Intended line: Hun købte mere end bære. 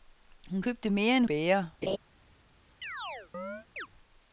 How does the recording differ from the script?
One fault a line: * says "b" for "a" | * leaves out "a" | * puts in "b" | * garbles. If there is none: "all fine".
all fine